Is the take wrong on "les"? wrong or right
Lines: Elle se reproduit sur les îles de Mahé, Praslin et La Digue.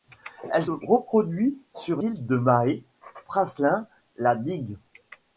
wrong